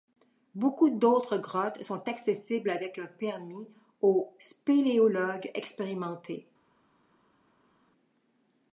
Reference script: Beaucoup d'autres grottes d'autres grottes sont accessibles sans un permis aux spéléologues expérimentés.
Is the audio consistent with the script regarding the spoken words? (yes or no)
no